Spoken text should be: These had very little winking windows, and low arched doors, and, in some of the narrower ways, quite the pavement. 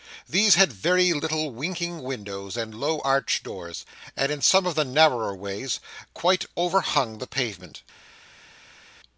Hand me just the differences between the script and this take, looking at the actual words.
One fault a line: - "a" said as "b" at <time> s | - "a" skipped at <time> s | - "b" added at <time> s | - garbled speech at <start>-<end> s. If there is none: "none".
- "overhung" added at 6.6 s